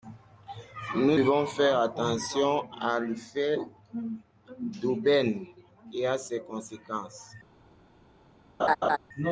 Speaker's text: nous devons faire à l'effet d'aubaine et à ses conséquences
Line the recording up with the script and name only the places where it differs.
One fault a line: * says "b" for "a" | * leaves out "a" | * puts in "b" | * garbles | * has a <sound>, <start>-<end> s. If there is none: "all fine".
* puts in "attention"
* has a laugh, 8.6-9.0 s